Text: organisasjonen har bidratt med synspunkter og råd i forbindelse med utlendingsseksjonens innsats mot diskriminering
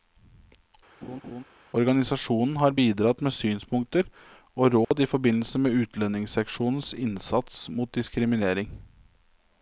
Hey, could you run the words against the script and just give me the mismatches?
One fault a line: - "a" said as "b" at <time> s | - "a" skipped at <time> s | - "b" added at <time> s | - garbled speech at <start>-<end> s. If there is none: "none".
none